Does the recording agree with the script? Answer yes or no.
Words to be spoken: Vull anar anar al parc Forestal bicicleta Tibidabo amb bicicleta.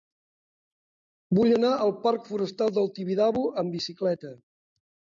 no